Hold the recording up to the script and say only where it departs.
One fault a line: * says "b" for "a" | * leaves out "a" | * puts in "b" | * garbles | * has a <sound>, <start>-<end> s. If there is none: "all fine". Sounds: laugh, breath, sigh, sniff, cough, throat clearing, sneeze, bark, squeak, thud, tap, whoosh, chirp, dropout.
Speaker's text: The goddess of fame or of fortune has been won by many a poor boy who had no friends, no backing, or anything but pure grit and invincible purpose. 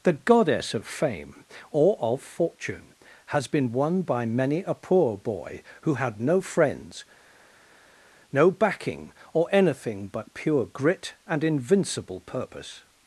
all fine